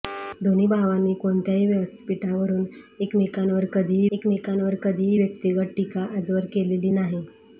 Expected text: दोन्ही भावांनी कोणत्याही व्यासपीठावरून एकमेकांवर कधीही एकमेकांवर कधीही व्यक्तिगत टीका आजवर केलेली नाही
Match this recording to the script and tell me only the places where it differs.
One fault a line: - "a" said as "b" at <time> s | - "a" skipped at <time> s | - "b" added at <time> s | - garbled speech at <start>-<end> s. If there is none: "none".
none